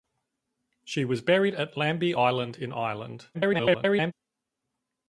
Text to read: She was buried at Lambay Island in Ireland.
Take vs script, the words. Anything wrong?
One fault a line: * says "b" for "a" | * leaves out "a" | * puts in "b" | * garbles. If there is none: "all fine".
* garbles